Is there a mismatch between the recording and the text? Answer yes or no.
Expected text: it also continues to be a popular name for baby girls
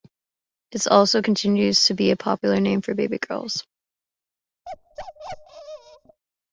no